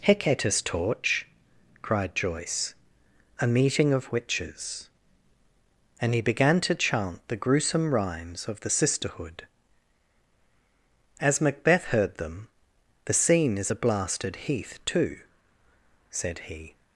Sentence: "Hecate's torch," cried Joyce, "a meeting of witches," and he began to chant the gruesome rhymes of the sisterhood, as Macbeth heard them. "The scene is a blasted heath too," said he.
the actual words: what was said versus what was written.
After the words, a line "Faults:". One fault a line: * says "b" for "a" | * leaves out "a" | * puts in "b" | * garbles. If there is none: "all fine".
"Hecate's torch," cried Joyce, "a meeting of witches," and he began to chant the gruesome rhymes of the sisterhood, as Macbeth heard them. "The scene is a blasted heath too," said he.
Faults:
all fine